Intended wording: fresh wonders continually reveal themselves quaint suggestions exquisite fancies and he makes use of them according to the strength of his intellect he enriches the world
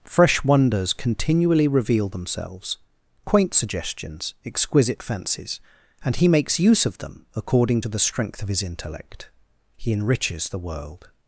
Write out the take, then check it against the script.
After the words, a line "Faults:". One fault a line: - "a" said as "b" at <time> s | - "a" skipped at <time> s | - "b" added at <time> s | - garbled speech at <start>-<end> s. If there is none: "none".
fresh wonders continually reveal themselves quaint suggestions exquisite fancies and he makes use of them according to the strength of his intellect he enriches the world
Faults:
none